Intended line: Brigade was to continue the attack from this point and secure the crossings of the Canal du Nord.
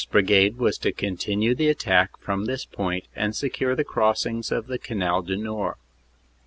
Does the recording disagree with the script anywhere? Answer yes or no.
no